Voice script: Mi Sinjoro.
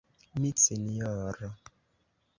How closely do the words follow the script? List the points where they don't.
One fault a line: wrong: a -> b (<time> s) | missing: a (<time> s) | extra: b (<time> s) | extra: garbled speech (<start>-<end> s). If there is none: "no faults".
no faults